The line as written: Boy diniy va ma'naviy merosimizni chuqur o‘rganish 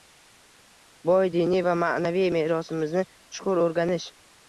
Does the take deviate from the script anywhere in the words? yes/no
no